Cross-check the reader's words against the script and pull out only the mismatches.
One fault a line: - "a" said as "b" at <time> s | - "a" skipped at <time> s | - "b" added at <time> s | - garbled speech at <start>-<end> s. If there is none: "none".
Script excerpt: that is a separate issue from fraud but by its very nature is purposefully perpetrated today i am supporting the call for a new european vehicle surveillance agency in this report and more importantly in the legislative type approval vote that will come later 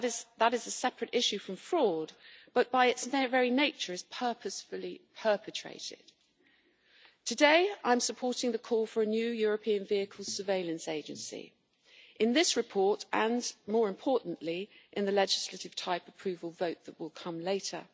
none